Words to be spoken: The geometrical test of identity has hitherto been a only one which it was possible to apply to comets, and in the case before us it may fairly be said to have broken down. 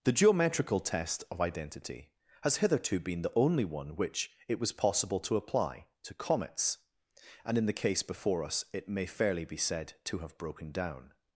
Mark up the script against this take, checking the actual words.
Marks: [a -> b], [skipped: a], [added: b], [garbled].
The geometrical test of identity has hitherto been [a -> the] only one which it was possible to apply to comets, and in the case before us it may fairly be said to have broken down.